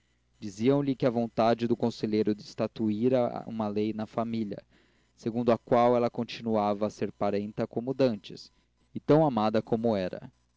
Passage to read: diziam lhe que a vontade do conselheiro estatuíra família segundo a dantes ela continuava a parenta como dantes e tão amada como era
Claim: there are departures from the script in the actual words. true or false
true